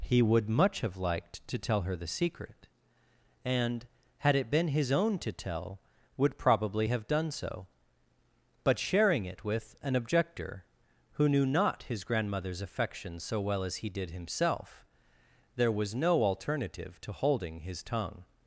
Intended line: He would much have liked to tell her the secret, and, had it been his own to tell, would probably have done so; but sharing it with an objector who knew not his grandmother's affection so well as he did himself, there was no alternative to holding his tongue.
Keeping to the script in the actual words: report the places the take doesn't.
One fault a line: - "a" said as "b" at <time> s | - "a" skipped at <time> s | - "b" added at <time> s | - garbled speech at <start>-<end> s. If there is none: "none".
none